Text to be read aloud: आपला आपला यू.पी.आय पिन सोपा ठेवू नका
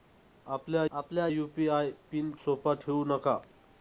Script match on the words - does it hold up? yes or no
yes